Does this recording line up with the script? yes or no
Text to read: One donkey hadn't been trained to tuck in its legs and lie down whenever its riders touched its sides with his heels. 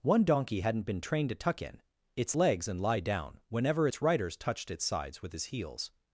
yes